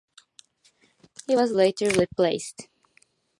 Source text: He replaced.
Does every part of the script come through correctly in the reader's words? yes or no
no